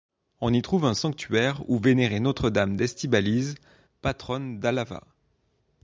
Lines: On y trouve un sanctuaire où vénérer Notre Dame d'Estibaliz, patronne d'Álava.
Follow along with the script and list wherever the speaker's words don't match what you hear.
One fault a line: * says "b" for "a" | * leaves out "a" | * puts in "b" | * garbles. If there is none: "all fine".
all fine